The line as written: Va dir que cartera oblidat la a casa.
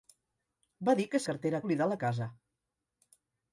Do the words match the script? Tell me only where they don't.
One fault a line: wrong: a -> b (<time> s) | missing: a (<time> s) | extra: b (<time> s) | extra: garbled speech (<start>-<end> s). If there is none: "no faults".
no faults